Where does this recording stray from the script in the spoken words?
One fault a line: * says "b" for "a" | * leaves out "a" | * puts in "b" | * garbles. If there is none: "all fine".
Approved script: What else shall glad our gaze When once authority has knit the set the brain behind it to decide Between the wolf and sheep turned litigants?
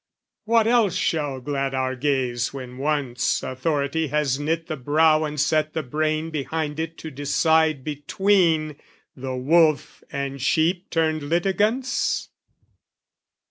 * puts in "brow And"